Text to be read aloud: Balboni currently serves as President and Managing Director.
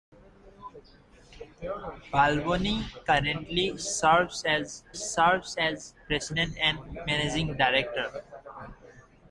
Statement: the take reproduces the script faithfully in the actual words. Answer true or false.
false